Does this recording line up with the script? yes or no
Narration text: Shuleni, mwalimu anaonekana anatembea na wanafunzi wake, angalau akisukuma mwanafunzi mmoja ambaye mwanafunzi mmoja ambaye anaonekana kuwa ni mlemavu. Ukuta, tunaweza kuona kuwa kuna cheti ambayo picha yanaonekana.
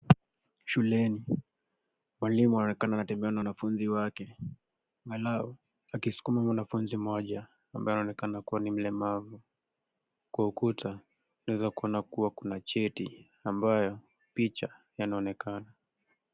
no